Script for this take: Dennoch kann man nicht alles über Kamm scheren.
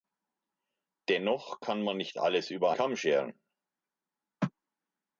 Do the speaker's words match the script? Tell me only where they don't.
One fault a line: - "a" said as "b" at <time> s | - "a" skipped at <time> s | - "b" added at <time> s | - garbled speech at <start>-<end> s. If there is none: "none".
none